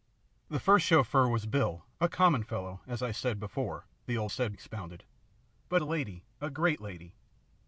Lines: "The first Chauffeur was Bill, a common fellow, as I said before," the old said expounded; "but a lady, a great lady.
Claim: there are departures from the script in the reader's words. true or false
false